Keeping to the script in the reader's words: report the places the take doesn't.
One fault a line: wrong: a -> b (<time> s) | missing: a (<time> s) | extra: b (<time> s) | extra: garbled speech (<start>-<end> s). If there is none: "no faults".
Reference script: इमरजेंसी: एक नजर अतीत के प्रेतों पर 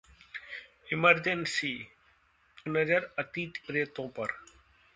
missing: एक (1.7 s)
missing: के (3.6 s)